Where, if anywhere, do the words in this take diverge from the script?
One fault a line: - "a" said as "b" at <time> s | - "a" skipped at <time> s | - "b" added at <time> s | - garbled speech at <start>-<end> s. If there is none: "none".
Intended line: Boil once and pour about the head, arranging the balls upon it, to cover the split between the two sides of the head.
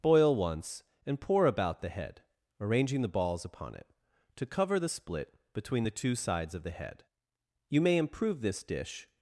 - "You may improve this dish" added at 7.7 s